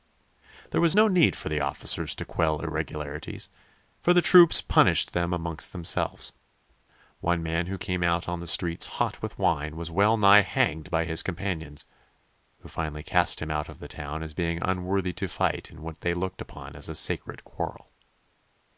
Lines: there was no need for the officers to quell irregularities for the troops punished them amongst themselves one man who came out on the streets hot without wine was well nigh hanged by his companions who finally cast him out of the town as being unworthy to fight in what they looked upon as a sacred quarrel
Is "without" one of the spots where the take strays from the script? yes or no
yes